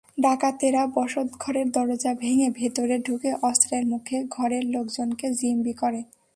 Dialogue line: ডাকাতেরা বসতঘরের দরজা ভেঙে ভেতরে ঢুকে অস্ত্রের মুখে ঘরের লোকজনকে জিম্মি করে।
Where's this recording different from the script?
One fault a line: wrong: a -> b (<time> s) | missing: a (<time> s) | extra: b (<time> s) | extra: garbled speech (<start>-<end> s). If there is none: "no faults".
no faults